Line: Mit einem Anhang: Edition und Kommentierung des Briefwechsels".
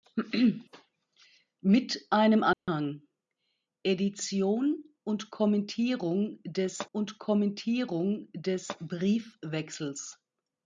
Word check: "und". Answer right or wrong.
right